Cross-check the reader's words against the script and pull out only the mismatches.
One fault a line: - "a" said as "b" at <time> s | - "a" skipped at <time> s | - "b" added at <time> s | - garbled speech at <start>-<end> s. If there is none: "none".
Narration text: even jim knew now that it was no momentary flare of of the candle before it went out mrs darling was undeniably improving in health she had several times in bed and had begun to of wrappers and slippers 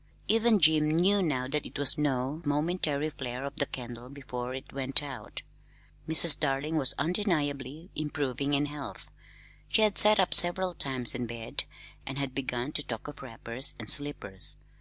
- "of" skipped at 3.6 s
- "sat up" added at 10.0 s
- "talk" added at 12.9 s